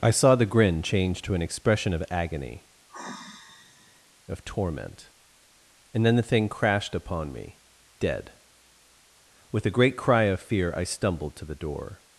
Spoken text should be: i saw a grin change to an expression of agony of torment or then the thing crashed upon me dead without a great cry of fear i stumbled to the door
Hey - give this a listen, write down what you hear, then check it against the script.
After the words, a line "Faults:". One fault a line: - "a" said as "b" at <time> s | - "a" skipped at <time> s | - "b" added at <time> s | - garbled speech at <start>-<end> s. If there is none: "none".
i saw the grin change to an expression of agony of torment and then the thing crashed upon me dead with a great cry of fear i stumbled to the door
Faults:
- "a" said as "the" at 0.3 s
- "or" said as "and" at 5.9 s
- "without" said as "with" at 9.5 s